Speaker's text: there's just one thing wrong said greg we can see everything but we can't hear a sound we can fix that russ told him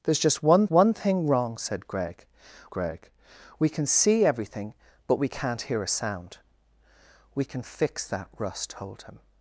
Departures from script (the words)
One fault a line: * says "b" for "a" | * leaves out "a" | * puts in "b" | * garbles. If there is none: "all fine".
* puts in "one"
* puts in "greg"